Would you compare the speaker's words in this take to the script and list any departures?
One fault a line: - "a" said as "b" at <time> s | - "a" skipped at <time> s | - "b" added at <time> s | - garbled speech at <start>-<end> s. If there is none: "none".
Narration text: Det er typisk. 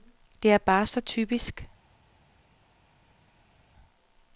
- "bare så" added at 0.6 s